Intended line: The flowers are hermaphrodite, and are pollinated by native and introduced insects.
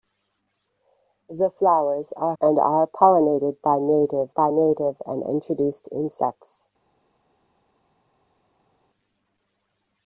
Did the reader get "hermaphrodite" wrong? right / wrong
wrong